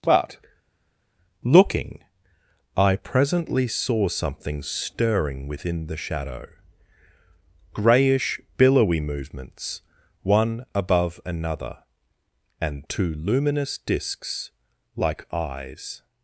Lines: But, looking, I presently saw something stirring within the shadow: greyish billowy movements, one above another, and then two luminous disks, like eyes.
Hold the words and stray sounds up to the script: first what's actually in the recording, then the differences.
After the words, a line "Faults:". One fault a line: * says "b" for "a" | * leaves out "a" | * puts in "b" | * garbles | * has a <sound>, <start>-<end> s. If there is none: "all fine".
But, looking, I presently saw something stirring within the shadow: greyish billowy movements, one above another, and two luminous disks, like eyes.
Faults:
* leaves out "then"